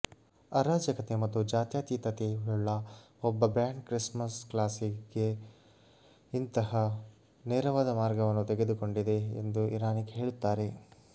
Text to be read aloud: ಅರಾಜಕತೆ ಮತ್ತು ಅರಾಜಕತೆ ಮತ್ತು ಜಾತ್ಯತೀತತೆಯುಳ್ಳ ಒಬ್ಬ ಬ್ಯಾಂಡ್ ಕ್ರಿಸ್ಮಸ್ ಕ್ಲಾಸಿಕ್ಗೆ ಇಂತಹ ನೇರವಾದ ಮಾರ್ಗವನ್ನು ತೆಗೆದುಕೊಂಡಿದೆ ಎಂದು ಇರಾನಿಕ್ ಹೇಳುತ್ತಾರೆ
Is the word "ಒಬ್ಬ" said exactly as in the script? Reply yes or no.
yes